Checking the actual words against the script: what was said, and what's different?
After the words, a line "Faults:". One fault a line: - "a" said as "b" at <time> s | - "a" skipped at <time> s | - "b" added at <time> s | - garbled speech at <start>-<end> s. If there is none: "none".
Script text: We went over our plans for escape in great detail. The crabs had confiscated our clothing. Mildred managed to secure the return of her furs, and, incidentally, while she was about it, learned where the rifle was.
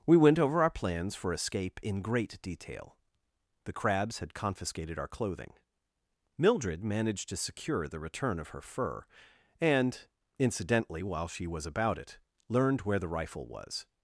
We went over our plans for escape in great detail. The crabs had confiscated our clothing. Mildred managed to secure the return of her fur, and, incidentally, while she was about it, learned where the rifle was.
Faults:
- "furs" said as "fur" at 8.6 s